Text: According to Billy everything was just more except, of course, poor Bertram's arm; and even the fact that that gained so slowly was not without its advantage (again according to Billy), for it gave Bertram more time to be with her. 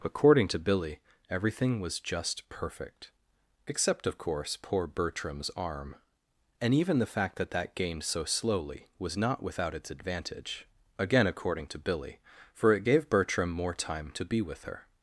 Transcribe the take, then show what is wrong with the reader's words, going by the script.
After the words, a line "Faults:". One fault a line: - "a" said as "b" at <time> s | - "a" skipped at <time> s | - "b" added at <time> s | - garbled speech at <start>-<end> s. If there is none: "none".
According to Billy everything was just perfect except, of course, poor Bertram's arm; and even the fact that that gained so slowly was not without its advantage (again according to Billy), for it gave Bertram more time to be with her.
Faults:
- "more" said as "perfect" at 2.5 s